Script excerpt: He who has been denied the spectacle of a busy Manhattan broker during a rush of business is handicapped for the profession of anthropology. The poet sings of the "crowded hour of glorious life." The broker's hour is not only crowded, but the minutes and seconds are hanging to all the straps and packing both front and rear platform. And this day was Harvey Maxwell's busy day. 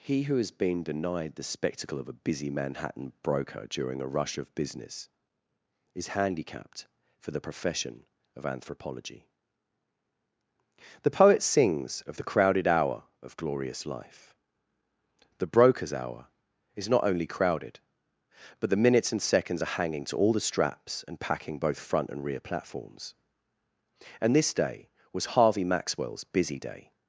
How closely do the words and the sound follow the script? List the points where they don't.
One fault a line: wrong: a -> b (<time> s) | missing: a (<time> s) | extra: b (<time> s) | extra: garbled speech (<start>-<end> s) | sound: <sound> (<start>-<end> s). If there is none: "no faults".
wrong: platform -> platforms (22.4 s)